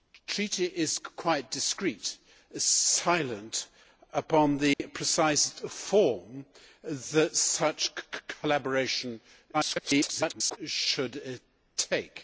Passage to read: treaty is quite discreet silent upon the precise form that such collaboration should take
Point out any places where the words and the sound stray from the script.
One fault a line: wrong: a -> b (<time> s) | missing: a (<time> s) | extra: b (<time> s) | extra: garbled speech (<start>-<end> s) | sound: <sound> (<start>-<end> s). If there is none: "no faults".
sound: dropout (4.7-4.8 s)
extra: garbled speech (9.5-10.6 s)